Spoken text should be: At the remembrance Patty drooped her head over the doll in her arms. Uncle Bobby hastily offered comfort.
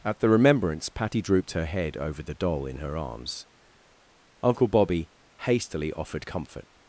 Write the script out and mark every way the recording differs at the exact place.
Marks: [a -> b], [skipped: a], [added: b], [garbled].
At the remembrance Patty drooped her head over the doll in her arms. Uncle Bobby hastily offered comfort.